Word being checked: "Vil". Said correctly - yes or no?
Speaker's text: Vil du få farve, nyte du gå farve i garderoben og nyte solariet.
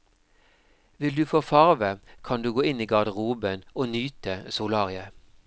yes